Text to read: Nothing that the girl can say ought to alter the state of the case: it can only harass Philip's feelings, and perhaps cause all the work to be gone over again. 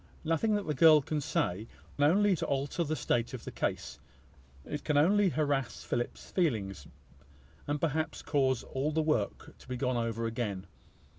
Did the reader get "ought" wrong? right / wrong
wrong